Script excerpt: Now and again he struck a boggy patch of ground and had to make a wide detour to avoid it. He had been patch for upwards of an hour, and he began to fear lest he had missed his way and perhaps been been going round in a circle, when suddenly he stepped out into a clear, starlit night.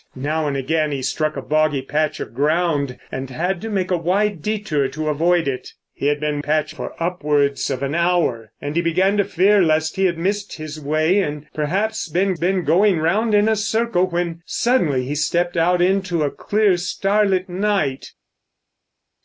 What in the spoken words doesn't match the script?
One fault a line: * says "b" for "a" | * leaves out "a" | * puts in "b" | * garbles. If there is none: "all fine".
all fine